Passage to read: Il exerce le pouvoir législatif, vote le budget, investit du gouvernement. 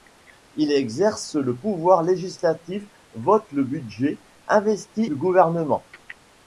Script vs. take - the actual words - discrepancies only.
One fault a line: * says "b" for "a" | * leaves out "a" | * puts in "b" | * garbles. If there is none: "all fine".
all fine